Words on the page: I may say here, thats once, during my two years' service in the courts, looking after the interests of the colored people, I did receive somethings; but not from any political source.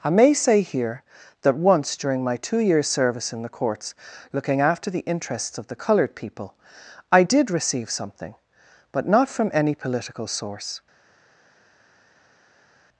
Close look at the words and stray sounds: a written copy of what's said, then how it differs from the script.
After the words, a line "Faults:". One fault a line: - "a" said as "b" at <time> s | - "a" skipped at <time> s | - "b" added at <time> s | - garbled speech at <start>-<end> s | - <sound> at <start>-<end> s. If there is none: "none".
I may say here, that once, during my two years' service in the courts, looking after the interests of the colored people, I did receive something; but not from any political source.
Faults:
- "thats" said as "that" at 1.4 s
- "somethings" said as "something" at 7.9 s